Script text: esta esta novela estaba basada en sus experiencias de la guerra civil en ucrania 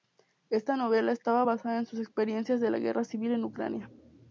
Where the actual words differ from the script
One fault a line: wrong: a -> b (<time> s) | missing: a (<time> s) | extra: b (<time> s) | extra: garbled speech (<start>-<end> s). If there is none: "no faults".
missing: esta (0.8 s)